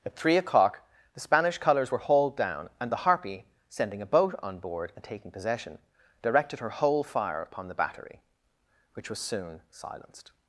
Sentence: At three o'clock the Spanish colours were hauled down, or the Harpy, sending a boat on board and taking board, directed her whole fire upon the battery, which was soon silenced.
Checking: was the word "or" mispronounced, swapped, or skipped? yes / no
yes